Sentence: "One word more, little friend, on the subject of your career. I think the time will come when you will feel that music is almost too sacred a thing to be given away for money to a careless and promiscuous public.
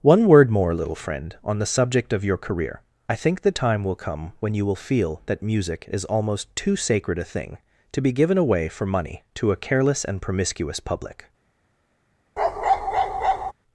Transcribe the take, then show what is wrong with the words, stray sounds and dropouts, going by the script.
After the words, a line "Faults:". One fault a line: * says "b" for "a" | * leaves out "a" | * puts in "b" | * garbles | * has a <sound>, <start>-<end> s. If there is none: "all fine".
"One word more, little friend, on the subject of your career. I think the time will come when you will feel that music is almost too sacred a thing to be given away for money to a careless and promiscuous public.
Faults:
* has a bark, 12.4-13.5 s